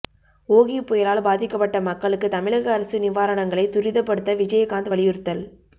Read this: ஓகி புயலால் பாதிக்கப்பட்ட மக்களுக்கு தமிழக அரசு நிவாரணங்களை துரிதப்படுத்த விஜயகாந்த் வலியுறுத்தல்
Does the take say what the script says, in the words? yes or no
yes